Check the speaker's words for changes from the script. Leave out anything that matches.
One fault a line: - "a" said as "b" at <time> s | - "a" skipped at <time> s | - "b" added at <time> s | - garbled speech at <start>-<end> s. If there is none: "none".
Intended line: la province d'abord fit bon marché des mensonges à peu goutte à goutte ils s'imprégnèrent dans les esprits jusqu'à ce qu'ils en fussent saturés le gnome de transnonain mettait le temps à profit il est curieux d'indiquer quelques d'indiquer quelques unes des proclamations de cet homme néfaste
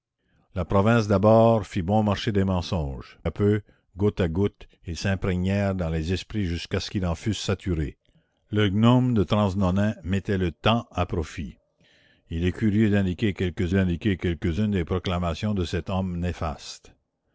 none